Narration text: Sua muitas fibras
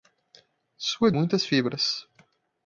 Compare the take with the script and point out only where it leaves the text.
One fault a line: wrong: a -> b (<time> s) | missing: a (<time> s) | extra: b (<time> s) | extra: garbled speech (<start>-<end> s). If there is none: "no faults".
no faults